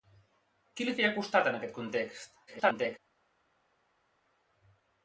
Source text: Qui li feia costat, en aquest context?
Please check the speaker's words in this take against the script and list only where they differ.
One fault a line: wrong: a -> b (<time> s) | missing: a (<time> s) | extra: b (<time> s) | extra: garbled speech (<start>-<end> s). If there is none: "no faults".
extra: garbled speech (2.5-3.0 s)